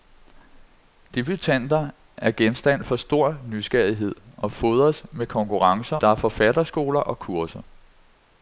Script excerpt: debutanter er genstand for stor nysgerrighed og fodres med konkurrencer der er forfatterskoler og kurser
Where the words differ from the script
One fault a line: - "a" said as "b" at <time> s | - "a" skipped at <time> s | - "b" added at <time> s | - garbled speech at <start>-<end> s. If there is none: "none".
none